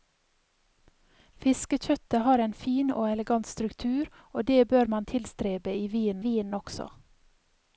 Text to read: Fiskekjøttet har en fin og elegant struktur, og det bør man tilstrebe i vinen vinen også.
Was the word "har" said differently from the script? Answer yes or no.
no